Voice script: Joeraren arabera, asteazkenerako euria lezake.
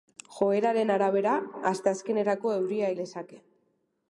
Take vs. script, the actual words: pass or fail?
pass